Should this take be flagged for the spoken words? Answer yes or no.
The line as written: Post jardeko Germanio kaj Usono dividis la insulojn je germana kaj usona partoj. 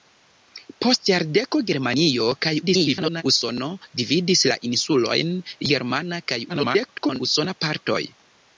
yes